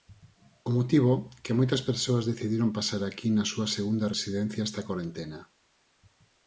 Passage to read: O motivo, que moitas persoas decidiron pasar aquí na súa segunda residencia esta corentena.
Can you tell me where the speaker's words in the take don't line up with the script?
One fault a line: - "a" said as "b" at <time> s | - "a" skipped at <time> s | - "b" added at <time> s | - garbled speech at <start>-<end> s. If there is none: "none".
none